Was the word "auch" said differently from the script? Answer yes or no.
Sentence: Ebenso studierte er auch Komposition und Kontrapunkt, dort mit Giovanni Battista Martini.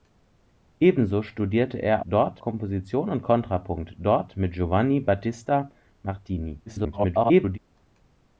yes